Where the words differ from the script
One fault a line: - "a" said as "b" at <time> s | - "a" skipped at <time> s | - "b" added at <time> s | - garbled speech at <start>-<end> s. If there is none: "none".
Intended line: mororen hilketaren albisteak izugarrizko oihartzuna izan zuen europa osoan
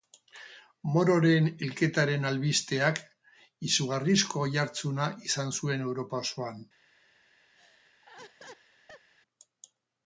none